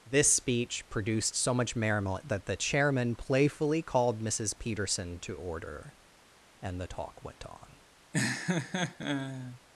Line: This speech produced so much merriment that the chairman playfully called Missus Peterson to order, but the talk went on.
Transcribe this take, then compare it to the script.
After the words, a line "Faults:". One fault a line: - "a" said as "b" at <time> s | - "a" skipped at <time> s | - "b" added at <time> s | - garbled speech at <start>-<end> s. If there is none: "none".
This speech produced so much merriment that the chairman playfully called Missus Peterson to order, and the talk went on.
Faults:
- "but" said as "and" at 6.6 s